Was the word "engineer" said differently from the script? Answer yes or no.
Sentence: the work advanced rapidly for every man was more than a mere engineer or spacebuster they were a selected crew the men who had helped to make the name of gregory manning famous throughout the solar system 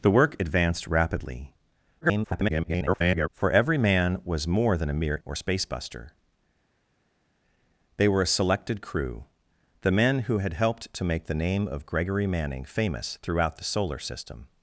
yes